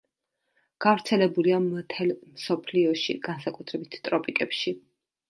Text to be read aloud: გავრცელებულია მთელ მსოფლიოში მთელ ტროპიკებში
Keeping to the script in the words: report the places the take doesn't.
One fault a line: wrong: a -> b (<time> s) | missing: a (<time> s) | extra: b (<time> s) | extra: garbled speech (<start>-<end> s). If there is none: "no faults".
wrong: მთელ -> განსაკუთრებით (3.3 s)